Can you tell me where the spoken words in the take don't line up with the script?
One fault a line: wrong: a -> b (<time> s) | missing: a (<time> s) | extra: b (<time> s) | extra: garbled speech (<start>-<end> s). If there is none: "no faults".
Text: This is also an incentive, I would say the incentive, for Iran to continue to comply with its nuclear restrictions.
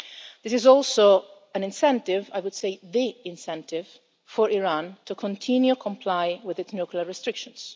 no faults